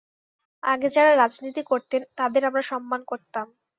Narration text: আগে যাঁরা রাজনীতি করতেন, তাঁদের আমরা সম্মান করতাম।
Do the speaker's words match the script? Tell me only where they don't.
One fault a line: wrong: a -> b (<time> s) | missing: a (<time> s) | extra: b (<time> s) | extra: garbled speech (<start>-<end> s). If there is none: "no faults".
no faults